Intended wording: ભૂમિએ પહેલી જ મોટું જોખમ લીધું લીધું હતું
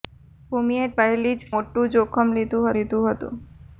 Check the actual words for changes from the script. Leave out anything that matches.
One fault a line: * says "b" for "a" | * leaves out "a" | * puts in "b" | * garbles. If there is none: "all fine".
all fine